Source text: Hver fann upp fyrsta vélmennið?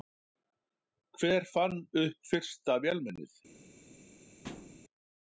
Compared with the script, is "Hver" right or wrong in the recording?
right